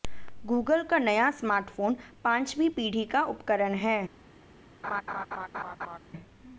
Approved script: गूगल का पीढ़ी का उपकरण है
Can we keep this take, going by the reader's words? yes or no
no